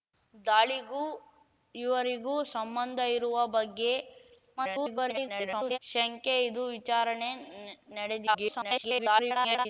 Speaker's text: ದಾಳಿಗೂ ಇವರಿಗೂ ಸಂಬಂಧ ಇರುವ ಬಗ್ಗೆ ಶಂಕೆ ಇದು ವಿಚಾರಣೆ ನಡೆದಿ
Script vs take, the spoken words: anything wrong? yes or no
yes